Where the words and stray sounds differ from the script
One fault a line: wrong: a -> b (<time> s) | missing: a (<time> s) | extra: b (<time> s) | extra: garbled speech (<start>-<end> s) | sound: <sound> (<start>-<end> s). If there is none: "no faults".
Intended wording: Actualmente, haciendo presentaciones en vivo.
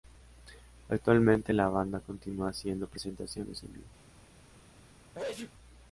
extra: la banda continúa (1.5 s)
sound: sneeze (5.1-5.5 s)